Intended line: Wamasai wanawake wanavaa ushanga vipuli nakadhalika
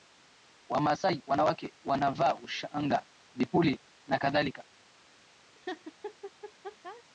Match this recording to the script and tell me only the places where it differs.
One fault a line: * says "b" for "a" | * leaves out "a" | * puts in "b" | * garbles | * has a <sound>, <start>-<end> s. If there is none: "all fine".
* has a laugh, 5.5-7.0 s